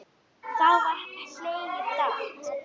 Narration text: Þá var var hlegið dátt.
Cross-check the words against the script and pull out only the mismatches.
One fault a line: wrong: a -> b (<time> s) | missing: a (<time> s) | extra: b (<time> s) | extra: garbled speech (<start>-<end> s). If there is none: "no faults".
missing: var (1.0 s)